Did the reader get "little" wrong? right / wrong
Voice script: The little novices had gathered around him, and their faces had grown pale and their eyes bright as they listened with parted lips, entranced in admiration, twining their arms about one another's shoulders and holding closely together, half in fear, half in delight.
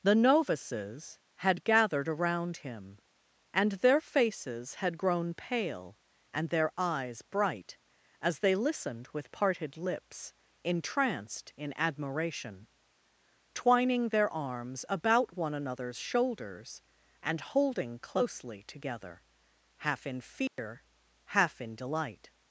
wrong